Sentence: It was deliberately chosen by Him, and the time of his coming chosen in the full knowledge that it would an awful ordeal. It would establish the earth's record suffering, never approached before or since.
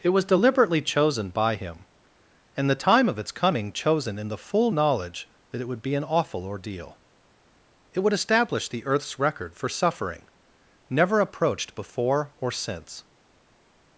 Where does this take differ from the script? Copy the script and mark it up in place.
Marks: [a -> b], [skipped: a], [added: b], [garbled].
It was deliberately chosen by Him, and the time of [his -> its] coming chosen in the full knowledge that it would [added: be] an awful ordeal. It would establish the earth's record [added: for] suffering, never approached before or since.